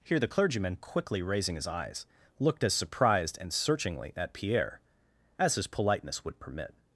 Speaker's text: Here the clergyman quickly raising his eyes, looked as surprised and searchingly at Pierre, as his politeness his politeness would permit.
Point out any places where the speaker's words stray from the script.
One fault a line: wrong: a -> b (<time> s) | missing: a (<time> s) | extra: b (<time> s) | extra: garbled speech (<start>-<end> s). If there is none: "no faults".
missing: his politeness (6.2 s)